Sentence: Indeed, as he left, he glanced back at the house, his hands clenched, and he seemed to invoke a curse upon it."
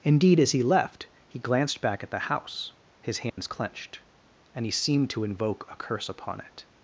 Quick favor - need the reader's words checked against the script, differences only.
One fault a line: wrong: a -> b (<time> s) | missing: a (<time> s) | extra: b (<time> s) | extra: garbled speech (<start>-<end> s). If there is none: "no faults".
no faults